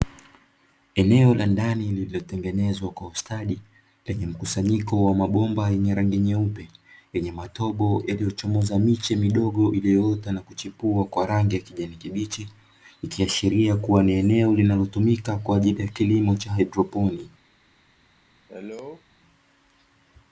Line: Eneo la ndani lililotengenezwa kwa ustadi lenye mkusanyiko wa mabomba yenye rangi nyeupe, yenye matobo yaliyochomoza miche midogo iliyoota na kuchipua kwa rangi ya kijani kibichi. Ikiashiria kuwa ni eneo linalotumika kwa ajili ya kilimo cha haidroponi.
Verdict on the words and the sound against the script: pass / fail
fail